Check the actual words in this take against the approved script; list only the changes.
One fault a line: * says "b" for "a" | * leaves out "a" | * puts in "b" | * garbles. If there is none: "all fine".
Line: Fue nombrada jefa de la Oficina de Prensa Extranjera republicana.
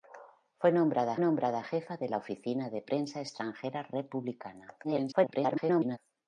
* puts in "nombrada"
* garbles